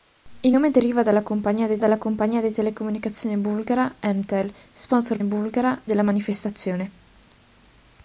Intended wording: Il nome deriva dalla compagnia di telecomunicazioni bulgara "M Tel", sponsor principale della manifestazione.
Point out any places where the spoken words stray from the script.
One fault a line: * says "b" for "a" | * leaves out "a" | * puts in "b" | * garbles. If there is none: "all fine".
* puts in "dalla compagnia di"
* says "bulgara" for "principale"